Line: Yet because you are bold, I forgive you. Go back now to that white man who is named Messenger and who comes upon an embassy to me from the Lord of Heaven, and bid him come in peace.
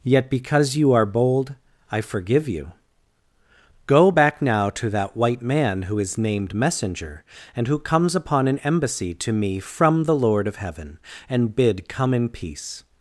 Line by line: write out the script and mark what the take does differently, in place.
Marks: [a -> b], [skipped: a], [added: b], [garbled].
Yet because you are bold, I forgive you. Go back now to that white man who is named Messenger and who comes upon an embassy to me from the Lord of Heaven, and bid [skipped: him] come in peace.